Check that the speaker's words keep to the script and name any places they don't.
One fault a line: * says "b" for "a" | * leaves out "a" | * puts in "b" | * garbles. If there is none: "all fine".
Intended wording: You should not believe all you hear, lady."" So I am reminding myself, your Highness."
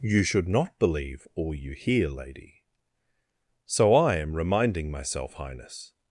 * leaves out "your"